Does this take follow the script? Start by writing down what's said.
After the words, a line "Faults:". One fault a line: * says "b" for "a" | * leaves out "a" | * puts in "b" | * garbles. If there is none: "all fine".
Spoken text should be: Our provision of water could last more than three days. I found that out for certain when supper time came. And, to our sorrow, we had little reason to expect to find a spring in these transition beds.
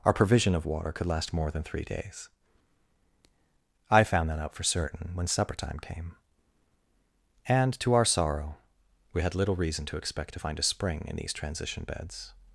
Our provision of water could last more than three days. I found that out for certain when supper time came. And, to our sorrow, we had little reason to expect to find a spring in these transition beds.
Faults:
all fine